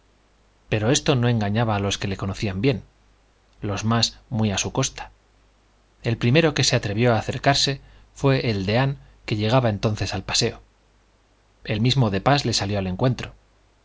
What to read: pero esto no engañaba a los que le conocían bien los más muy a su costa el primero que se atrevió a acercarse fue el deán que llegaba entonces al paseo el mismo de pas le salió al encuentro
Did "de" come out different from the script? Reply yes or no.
no